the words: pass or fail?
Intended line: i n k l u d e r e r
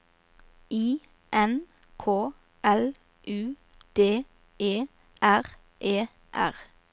pass